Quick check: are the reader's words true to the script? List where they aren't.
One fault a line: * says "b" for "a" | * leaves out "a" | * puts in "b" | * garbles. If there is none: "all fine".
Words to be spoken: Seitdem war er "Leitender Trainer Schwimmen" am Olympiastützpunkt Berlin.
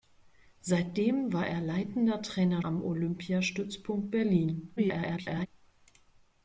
* leaves out "Schwimmen"
* garbles